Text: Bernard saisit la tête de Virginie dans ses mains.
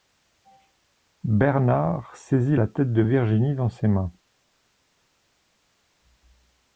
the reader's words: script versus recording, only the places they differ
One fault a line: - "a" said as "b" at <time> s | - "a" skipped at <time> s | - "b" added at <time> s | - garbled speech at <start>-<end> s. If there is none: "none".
none